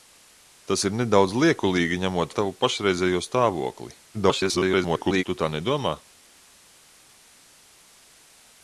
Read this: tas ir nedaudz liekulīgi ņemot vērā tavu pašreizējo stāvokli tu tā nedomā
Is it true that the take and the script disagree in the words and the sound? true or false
true